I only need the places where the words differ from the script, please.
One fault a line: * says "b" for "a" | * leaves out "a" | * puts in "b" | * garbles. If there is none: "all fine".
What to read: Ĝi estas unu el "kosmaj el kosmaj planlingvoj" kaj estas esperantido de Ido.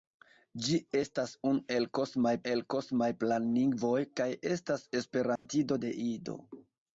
all fine